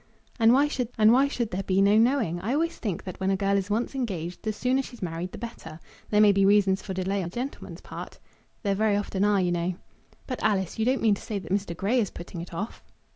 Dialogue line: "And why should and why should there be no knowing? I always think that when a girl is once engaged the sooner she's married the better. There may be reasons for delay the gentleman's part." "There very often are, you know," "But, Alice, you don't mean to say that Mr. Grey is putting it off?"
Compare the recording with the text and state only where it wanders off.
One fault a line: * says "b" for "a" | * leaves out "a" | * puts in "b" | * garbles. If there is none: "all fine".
all fine